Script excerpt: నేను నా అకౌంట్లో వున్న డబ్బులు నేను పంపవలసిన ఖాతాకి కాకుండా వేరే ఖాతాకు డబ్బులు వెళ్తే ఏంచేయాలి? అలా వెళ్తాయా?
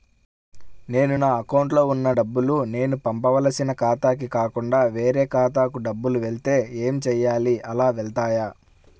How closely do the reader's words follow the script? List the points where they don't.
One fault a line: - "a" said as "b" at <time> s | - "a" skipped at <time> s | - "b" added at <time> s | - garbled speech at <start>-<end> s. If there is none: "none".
none